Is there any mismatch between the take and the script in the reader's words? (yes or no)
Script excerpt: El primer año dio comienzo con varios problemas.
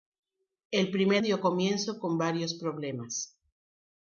yes